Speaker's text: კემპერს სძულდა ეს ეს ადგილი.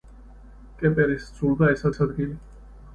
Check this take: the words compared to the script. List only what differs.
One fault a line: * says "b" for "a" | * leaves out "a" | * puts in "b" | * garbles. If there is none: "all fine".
all fine